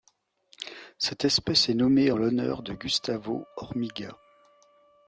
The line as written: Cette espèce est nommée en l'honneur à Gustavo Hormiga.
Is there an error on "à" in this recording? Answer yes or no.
yes